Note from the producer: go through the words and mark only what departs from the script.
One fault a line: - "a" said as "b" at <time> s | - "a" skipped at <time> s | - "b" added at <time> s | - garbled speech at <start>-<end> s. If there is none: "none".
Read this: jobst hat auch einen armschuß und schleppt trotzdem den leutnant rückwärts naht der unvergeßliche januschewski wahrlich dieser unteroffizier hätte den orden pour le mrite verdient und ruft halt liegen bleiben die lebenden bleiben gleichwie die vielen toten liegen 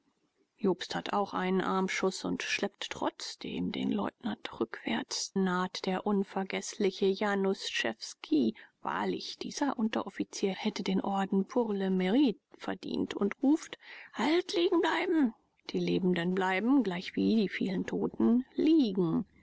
none